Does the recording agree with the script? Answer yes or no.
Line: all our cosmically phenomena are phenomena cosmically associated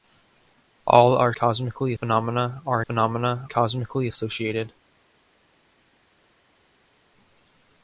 yes